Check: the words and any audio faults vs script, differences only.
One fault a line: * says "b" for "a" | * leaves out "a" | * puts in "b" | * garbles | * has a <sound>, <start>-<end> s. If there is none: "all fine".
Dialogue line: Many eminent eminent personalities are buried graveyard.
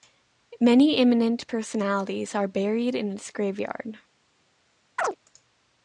* leaves out "eminent"
* puts in "in its"
* has a chirp, 5.0-5.2 s